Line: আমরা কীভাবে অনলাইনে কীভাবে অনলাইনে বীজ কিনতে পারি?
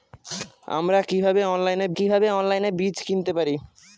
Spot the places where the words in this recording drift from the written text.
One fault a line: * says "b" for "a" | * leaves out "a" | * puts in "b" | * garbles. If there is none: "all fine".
all fine